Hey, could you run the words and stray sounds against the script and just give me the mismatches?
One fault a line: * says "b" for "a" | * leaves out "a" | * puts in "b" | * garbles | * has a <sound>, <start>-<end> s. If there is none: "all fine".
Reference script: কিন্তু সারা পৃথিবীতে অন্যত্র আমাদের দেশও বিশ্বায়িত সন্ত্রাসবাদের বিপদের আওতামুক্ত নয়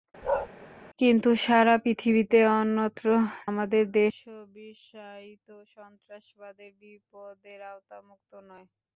* has a bark, 0.2-0.5 s